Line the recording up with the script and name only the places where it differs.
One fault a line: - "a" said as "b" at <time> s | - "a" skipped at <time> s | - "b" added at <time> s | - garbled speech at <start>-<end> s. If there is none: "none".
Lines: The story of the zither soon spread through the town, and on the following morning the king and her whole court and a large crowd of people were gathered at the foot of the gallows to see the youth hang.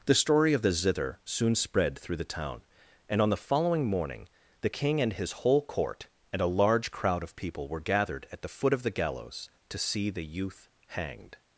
- "her" said as "his" at 5.1 s
- "hang" said as "hanged" at 10.9 s